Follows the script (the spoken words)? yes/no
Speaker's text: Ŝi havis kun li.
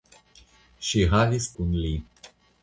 yes